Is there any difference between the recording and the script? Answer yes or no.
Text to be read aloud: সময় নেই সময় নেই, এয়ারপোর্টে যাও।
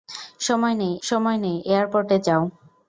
no